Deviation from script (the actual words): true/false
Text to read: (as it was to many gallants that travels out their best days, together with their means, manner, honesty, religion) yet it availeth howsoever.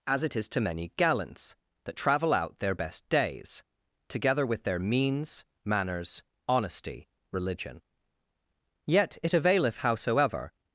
true